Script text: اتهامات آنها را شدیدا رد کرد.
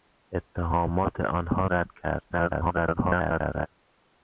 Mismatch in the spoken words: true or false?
true